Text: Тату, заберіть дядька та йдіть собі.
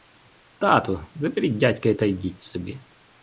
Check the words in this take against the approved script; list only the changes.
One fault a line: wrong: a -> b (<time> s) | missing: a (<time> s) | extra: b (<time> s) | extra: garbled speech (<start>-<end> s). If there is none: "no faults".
no faults